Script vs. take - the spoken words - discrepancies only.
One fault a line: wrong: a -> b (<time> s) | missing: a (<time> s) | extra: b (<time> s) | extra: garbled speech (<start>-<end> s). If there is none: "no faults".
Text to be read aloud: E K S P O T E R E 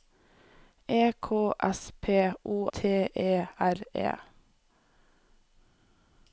no faults